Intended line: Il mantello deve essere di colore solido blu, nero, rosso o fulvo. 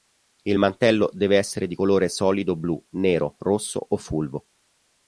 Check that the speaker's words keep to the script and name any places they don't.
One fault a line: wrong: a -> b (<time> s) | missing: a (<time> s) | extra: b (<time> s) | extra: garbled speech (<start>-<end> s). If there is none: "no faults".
no faults